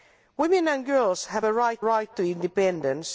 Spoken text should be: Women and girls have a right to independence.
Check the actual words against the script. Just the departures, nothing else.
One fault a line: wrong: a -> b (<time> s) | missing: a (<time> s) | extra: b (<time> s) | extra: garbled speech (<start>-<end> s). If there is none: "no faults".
extra: right (1.8 s)